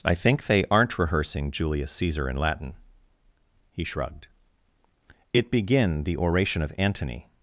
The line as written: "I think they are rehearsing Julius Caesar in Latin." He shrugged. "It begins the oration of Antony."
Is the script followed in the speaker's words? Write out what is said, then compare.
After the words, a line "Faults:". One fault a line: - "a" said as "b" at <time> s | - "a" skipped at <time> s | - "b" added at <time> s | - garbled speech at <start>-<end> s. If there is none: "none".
"I think they aren't rehearsing Julius Caesar in Latin." He shrugged. "It begin the oration of Antony."
Faults:
- "are" said as "aren't" at 0.7 s
- "begins" said as "begin" at 5.5 s